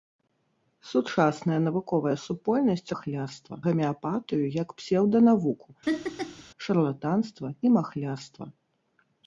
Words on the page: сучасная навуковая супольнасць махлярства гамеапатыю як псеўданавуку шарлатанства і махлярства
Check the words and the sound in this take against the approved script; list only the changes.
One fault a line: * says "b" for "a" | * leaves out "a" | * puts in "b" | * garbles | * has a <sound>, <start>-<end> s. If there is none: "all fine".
* has a laugh, 5.8-6.4 s